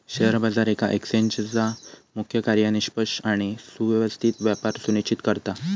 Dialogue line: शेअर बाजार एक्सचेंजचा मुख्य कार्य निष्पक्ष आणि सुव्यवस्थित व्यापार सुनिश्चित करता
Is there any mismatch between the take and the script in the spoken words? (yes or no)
yes